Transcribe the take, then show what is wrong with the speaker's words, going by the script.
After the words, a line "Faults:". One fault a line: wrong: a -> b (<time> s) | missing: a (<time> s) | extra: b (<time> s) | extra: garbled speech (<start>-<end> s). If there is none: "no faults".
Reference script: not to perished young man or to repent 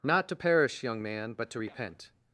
not to perish young man but to repent
Faults:
wrong: perished -> perish (0.3 s)
wrong: or -> but (1.3 s)